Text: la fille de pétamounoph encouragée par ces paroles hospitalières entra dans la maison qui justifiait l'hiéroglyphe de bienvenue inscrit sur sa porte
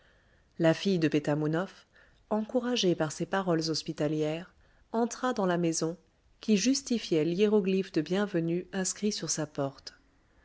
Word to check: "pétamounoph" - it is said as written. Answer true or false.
true